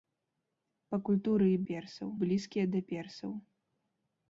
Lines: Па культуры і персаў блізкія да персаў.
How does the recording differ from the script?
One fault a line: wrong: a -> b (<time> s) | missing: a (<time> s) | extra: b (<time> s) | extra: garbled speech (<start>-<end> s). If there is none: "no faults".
no faults